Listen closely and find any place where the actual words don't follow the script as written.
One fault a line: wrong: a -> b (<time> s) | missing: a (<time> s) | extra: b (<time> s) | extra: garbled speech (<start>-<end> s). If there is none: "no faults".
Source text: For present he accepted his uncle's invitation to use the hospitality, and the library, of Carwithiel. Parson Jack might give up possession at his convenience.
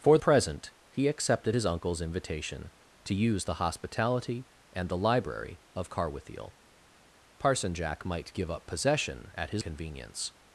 no faults